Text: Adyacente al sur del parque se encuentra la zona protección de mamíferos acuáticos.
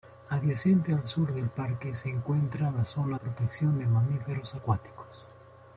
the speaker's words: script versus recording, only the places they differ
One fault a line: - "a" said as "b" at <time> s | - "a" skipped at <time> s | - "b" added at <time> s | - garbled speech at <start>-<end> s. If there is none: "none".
none